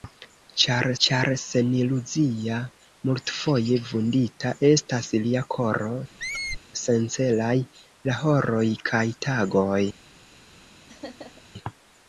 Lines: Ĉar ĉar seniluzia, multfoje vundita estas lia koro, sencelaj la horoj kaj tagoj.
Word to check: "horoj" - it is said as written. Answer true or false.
true